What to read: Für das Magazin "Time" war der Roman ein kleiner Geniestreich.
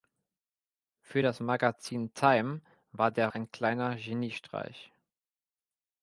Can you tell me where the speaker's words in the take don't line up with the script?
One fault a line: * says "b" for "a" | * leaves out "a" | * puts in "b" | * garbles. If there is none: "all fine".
* leaves out "Roman"